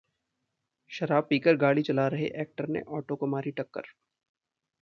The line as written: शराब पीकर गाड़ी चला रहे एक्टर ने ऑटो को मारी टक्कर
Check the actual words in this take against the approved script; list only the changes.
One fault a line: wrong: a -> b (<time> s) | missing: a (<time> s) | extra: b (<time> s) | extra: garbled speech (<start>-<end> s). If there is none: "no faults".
no faults